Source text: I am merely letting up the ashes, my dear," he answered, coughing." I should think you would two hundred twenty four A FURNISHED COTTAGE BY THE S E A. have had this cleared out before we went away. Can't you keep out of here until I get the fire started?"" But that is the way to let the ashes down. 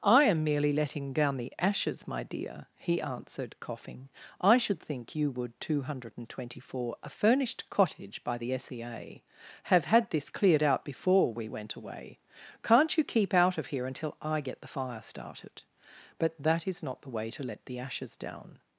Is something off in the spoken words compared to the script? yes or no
yes